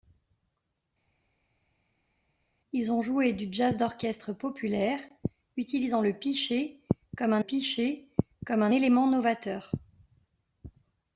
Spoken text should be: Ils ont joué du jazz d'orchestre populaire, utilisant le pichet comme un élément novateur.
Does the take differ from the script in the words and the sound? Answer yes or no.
yes